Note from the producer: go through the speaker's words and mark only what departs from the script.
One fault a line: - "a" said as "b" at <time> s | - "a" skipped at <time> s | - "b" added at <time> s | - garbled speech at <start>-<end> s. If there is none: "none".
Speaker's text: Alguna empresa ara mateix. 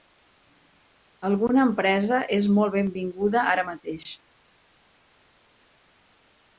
- "és molt benvinguda" added at 2.4 s